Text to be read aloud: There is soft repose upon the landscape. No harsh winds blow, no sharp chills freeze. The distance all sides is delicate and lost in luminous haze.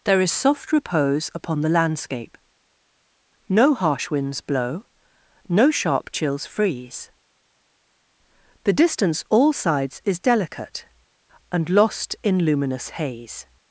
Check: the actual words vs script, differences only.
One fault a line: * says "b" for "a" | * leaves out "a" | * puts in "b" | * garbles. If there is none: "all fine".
all fine